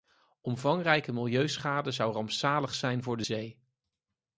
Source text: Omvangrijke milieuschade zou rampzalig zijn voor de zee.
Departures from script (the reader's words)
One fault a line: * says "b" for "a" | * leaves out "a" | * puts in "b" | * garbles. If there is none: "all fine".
all fine